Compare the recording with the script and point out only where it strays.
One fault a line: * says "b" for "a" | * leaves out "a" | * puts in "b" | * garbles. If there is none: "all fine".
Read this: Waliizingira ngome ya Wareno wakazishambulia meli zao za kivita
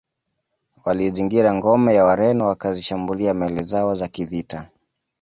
all fine